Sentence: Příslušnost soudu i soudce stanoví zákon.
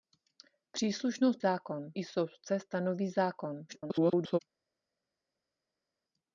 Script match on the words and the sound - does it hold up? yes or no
no